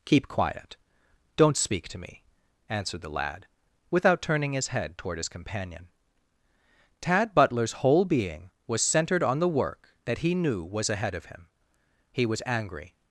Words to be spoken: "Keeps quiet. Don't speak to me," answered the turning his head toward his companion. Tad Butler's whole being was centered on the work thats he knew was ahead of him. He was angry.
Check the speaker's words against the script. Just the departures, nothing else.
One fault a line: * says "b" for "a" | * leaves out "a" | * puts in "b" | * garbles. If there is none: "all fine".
* says "Keep" for "Keeps"
* puts in "lad without"
* says "that" for "thats"